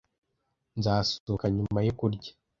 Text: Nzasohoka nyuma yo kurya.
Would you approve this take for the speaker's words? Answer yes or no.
yes